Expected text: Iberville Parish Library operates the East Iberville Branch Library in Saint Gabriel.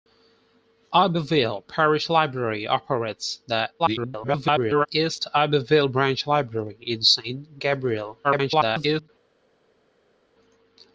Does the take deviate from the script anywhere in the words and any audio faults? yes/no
yes